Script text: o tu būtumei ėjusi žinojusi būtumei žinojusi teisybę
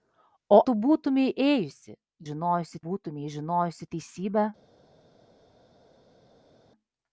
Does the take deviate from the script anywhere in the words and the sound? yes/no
no